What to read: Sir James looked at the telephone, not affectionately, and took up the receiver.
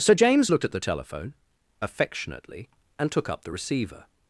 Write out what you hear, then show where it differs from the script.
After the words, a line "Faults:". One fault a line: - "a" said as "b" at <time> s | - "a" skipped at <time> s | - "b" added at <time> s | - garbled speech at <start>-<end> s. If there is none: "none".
Sir James looked at the telephone, affectionately, and took up the receiver.
Faults:
- "not" skipped at 1.3 s